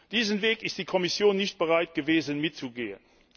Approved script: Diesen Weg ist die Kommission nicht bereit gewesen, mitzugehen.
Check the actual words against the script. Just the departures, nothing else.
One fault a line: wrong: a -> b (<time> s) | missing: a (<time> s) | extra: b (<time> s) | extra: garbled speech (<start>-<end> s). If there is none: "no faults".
no faults